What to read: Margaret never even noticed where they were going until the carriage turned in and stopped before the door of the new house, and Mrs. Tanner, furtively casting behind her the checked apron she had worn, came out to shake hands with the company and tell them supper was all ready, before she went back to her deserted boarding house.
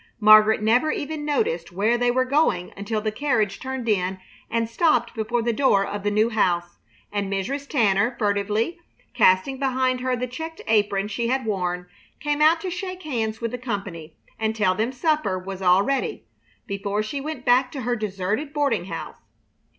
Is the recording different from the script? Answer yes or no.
no